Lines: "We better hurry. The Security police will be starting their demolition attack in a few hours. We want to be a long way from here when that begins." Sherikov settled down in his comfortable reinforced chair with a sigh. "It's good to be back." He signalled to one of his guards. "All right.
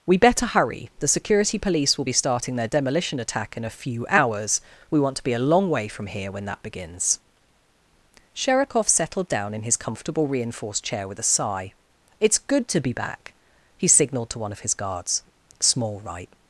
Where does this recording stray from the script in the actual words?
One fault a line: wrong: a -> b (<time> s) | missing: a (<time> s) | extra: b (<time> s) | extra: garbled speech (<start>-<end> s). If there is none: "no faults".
wrong: All -> Small (15.6 s)